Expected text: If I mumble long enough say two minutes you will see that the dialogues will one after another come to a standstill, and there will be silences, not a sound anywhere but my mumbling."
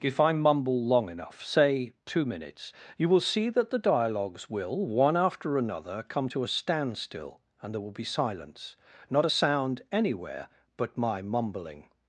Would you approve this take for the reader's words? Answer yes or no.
no